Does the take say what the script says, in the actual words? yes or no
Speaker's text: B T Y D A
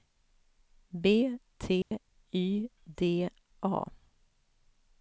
yes